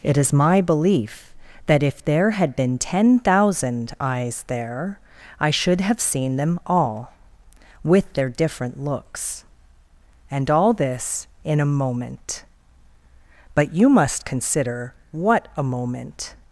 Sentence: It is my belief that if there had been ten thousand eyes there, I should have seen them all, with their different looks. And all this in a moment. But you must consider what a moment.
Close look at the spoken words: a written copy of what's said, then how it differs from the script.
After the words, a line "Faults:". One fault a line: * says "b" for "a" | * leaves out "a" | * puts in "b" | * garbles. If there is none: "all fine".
It is my belief that if there had been ten thousand eyes there, I should have seen them all, with their different looks. And all this in a moment. But you must consider what a moment.
Faults:
all fine